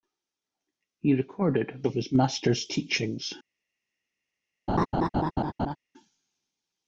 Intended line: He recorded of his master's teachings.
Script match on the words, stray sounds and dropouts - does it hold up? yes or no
no